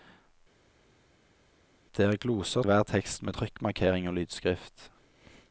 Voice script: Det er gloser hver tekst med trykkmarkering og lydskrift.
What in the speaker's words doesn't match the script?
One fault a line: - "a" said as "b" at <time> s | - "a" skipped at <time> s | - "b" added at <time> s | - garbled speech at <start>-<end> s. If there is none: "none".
none